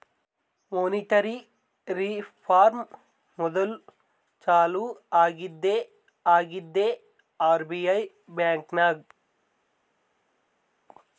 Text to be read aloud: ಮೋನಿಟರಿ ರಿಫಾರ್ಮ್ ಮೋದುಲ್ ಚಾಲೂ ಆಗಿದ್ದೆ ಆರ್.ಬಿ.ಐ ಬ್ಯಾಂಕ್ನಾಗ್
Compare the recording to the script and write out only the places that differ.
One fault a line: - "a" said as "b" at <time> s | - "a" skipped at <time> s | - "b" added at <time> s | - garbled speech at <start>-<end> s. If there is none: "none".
- "ಆಗಿದ್ದೆ" added at 6.3 s